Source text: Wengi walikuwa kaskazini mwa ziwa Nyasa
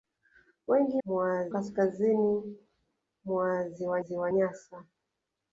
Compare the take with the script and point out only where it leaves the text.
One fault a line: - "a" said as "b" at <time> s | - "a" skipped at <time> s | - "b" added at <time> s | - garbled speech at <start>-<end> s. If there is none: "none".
- "walikuwa" said as "mwa" at 1.0 s
- "ziwa" added at 4.0 s